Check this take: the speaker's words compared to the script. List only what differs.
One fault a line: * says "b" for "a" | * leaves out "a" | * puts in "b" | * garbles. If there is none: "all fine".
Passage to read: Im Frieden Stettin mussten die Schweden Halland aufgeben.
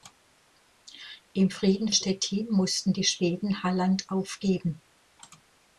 all fine